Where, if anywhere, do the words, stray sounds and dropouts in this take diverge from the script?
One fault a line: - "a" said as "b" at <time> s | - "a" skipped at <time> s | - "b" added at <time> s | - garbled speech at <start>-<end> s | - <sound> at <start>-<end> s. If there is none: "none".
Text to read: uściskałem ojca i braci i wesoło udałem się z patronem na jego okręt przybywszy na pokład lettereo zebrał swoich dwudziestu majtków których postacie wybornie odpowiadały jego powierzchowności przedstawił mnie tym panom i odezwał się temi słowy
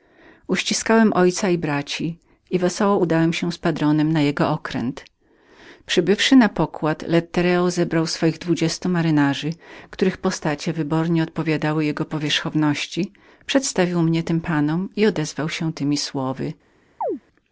- chirp at 17.0-17.2 s